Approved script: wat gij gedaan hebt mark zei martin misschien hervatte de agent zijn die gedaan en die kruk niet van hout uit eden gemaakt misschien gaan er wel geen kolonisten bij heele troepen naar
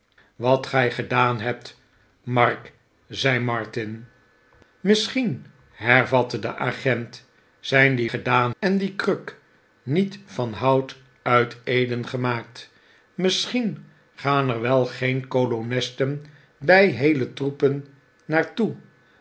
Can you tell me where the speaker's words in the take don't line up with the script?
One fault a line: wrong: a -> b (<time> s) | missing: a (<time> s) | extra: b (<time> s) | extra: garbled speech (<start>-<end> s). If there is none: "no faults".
no faults